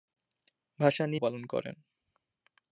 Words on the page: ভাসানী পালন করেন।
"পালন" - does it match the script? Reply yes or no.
yes